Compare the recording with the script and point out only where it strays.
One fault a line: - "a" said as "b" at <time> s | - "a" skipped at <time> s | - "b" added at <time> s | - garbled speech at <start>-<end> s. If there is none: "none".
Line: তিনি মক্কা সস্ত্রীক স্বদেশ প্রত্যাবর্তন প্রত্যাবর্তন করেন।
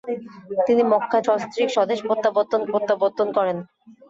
none